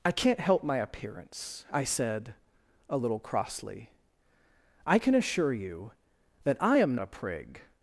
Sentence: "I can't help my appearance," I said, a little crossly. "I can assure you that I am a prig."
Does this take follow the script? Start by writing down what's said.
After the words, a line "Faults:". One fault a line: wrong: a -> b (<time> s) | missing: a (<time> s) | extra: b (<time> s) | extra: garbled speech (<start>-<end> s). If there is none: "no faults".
"I can't help my appearance," I said, a little crossly. "I can assure you that I am a prig."
Faults:
no faults